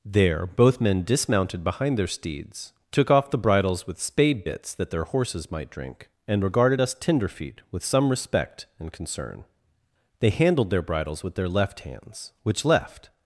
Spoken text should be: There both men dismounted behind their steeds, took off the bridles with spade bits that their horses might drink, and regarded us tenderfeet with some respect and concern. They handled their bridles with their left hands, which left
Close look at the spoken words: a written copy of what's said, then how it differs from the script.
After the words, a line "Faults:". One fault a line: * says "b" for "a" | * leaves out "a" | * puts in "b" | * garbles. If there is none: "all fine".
There both men dismounted behind their steeds, took off the bridles with spade bits that their horses might drink, and regarded us tenderfeet with some respect and concern. They handled their bridles with their left hands, which left
Faults:
all fine